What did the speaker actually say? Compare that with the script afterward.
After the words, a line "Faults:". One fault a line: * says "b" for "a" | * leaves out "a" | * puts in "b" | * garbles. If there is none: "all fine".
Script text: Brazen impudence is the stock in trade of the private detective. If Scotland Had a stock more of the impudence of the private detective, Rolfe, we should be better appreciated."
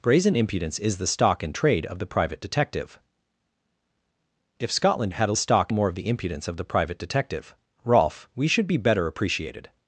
Brazen impudence is the stock in trade of the private detective. If Scotland Had a stock more of the impudence of the private detective, Rolfe, we should be better appreciated."
Faults:
all fine